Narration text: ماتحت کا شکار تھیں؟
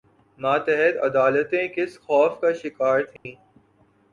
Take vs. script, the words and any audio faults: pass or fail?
fail